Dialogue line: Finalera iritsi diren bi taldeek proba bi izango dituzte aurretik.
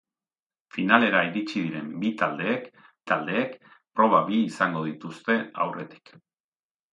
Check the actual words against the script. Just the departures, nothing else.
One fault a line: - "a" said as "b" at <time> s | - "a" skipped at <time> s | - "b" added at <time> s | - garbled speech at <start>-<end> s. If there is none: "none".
- "taldeek" added at 3.1 s